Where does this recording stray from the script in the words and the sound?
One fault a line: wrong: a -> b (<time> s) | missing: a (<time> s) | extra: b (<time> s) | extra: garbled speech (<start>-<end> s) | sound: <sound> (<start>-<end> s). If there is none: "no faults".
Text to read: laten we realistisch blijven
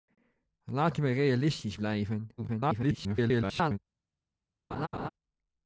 extra: garbled speech (2.4-3.8 s)
sound: laugh (4.7-5.1 s)